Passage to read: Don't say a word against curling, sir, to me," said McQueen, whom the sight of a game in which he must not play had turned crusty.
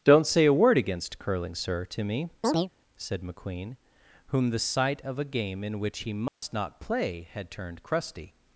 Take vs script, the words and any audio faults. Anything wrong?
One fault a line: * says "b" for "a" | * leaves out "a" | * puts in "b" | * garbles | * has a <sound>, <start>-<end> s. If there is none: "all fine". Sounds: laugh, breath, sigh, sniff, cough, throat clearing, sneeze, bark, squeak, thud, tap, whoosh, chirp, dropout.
* has a chirp, 2.4-2.7 s
* has a dropout, 6.3-6.4 s